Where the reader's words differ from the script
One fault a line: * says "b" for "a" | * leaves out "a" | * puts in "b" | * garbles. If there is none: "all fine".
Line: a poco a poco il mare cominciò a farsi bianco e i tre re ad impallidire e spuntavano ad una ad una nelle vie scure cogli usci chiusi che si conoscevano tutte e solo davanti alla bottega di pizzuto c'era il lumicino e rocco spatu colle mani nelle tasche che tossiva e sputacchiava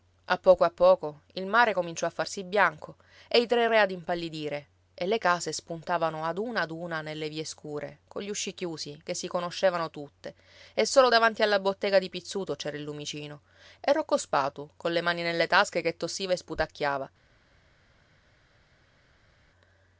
* puts in "le case"